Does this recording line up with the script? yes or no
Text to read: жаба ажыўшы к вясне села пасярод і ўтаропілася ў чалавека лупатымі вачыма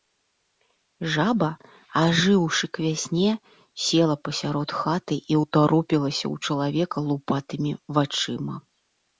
no